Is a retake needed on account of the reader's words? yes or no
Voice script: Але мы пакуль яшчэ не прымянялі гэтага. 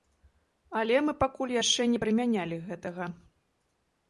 no